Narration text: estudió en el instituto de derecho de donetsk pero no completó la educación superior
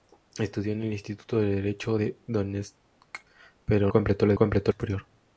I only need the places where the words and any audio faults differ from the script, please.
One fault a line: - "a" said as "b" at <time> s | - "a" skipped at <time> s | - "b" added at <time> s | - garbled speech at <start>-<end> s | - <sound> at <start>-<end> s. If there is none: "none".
- "no" skipped at 3.9 s
- "educación" said as "completó" at 4.3 s